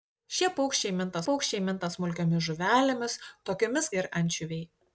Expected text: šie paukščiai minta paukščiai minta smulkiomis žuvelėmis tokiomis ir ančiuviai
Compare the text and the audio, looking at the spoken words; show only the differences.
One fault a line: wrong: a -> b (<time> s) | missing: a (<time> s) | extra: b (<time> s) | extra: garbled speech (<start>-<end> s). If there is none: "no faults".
no faults